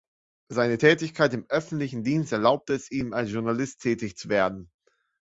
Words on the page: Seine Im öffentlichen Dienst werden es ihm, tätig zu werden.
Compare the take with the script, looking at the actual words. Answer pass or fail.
fail